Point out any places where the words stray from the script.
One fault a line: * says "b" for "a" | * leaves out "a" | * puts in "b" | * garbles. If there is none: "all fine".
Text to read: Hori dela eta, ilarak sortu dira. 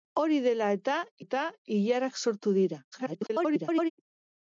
* puts in "eta"
* garbles